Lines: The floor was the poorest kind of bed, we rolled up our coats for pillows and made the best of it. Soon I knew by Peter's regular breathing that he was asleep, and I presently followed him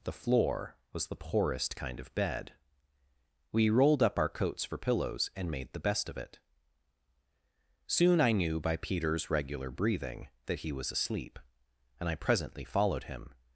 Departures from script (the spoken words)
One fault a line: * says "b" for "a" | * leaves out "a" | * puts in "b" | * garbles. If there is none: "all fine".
all fine